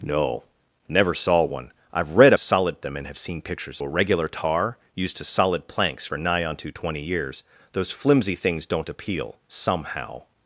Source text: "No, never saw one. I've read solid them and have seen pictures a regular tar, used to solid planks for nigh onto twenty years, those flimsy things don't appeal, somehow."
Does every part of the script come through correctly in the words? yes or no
yes